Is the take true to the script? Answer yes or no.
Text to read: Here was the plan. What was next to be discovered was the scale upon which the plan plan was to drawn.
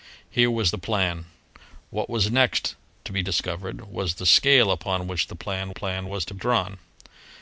yes